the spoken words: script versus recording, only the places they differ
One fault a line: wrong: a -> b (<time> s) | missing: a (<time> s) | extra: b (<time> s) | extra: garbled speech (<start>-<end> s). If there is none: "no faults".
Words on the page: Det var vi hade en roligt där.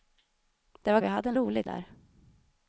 no faults